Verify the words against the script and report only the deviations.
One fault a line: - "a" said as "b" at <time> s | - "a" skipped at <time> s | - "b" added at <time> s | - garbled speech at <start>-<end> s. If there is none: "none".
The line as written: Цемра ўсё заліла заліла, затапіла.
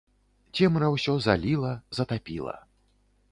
- "заліла" skipped at 1.7 s